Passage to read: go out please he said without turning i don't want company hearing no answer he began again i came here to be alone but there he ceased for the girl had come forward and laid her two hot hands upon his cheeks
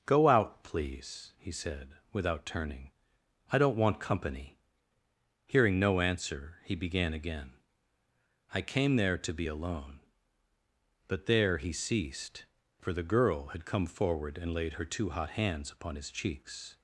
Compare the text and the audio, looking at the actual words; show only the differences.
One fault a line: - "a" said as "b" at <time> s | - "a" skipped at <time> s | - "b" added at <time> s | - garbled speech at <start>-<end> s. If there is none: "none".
- "here" said as "there" at 8.9 s